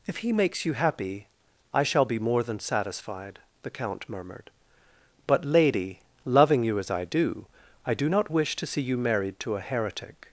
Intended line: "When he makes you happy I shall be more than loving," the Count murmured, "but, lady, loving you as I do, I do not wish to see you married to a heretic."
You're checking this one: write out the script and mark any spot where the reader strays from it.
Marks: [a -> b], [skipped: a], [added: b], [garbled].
["When -> If] he makes you happy I shall be more than [loving," -> satisfied] the Count murmured, "but, lady, loving you as I do, I do not wish to see you married to a heretic."